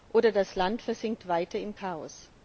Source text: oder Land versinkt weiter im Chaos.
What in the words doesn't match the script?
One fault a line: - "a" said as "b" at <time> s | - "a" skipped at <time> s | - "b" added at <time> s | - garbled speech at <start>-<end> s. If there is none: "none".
- "das" added at 0.3 s